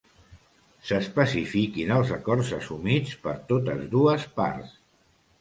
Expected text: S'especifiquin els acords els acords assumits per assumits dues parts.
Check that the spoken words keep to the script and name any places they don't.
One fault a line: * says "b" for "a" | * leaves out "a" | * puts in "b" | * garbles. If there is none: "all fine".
* leaves out "els acords"
* says "totes" for "assumits"